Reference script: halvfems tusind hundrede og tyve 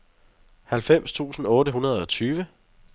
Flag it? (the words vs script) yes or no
yes